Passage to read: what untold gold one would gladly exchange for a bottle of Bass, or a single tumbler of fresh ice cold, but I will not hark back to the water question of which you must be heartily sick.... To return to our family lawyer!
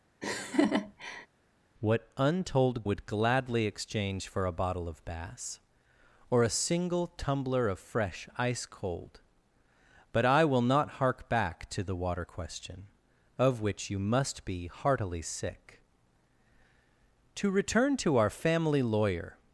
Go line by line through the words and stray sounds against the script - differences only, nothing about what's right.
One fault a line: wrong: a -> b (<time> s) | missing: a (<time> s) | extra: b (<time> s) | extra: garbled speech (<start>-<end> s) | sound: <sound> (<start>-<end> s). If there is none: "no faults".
sound: laugh (0.2-1.3 s)
missing: gold one (2.9 s)